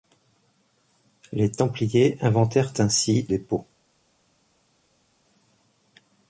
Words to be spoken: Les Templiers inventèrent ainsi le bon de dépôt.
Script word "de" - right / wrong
wrong